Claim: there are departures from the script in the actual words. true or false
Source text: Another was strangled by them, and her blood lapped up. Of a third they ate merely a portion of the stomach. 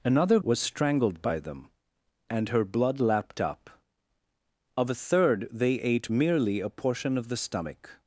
false